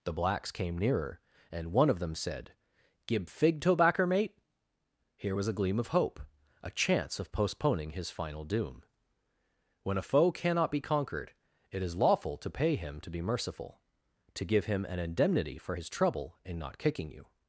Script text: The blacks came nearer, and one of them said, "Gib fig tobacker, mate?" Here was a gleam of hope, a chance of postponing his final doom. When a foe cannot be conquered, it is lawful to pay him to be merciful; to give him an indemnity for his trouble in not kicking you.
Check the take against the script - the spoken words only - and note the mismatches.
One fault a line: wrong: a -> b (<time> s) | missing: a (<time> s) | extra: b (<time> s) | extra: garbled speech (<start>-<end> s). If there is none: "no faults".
no faults